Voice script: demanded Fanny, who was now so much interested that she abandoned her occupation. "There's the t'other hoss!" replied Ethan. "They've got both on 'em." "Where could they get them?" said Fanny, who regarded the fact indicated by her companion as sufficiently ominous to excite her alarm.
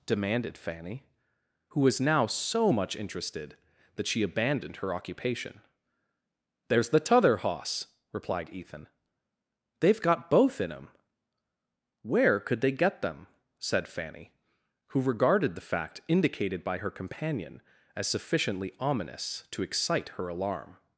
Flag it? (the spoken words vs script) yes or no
yes